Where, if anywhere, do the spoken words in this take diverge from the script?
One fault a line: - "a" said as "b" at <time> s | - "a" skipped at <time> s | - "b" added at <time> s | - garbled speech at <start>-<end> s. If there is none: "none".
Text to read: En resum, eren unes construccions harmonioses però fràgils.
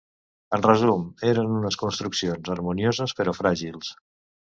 none